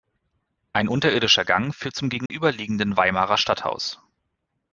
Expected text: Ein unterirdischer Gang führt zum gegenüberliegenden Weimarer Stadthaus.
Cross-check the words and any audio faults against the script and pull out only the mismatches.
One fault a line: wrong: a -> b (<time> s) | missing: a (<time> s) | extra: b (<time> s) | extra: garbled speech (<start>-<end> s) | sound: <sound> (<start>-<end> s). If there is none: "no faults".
sound: dropout (2.3-2.3 s)